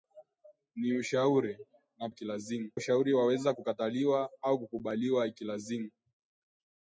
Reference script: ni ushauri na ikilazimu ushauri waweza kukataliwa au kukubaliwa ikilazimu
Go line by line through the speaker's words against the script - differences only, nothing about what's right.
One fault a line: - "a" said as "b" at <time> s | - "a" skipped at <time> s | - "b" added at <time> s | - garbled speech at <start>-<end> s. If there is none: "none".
none